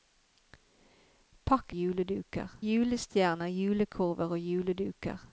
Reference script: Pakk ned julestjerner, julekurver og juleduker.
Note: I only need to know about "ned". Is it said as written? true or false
false